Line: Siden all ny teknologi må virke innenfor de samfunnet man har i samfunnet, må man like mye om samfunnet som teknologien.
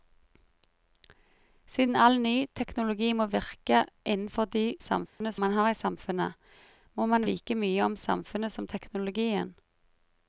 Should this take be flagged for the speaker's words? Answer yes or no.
no